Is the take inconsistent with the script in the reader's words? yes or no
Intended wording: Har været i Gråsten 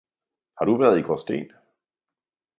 yes